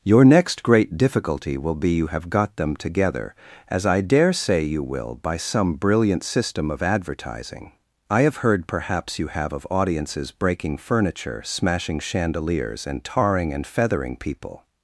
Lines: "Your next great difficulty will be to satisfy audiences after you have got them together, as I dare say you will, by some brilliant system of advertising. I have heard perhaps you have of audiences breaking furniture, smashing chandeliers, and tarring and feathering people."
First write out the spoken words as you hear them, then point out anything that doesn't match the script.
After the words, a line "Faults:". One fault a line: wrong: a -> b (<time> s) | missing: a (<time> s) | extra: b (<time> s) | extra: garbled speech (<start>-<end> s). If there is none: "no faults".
"Your next great difficulty will be you have got them together, as I dare say you will, by some brilliant system of advertising. I have heard perhaps you have of audiences breaking furniture, smashing chandeliers, and tarring and feathering people."
Faults:
missing: to satisfy audiences after (1.9 s)